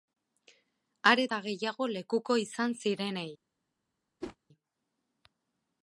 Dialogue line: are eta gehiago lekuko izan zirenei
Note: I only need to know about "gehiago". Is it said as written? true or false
true